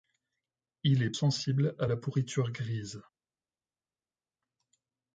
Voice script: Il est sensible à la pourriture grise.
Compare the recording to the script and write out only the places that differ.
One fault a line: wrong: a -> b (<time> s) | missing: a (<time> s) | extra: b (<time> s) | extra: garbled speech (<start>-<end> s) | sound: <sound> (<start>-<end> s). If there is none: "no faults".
no faults